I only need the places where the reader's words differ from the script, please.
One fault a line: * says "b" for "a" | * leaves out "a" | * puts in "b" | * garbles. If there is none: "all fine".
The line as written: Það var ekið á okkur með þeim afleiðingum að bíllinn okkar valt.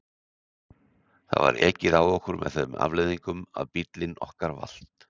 all fine